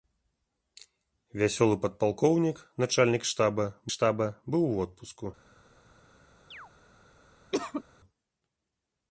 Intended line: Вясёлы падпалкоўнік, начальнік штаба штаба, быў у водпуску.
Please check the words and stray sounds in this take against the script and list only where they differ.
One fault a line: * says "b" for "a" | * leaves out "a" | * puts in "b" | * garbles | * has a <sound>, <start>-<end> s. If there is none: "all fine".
* has a chirp, 6.5-6.7 s
* has a cough, 7.5-7.8 s